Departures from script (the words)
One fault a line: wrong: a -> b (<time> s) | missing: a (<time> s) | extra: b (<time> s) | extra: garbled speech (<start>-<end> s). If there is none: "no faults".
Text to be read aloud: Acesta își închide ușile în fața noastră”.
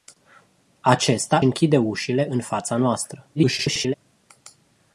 missing: își (1.4 s)
extra: garbled speech (3.3-3.9 s)